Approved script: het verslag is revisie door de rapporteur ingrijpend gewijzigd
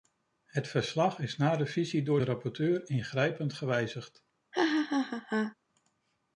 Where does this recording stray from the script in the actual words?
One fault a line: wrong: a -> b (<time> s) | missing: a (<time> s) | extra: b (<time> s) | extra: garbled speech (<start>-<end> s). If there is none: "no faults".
extra: na (1.4 s)